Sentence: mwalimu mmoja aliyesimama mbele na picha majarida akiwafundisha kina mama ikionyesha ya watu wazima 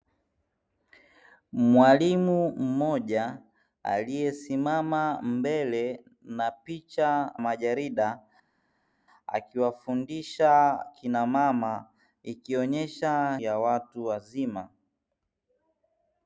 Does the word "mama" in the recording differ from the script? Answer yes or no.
no